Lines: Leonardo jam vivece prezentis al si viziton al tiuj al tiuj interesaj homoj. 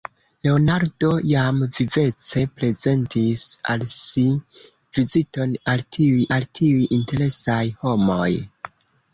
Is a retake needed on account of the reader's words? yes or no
no